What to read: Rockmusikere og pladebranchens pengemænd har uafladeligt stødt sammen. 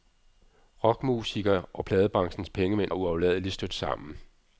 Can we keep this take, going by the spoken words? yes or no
no